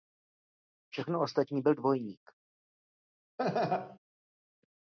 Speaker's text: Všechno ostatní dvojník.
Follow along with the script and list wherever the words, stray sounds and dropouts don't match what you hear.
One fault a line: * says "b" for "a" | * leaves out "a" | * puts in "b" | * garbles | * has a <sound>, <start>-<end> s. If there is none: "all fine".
* puts in "byl"
* has a laugh, 3.4-4.0 s